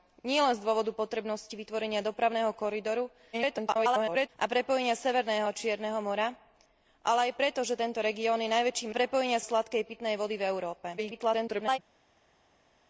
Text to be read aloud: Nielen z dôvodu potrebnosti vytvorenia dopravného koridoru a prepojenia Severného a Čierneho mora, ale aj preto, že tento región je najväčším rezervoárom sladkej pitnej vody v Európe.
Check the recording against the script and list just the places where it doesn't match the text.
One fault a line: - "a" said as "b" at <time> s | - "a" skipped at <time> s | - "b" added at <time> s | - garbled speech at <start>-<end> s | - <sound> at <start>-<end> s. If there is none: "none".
- garbled speech at 3.3-4.3 s
- "rezervoárom" said as "prepojenia" at 8.9 s
- garbled speech at 11.0-11.8 s